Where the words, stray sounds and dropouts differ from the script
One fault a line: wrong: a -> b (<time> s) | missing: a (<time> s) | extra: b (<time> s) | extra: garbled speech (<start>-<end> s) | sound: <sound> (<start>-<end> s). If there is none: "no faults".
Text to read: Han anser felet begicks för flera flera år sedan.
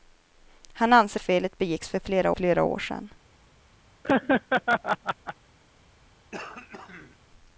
sound: laugh (4.0-5.3 s)
sound: throat clearing (6.3-7.2 s)